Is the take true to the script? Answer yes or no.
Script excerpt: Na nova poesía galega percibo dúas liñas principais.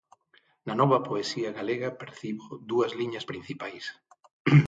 yes